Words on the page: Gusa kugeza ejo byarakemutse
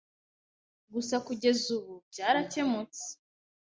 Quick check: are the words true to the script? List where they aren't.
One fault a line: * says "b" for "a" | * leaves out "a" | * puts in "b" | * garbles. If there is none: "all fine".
* says "ubu" for "ejo"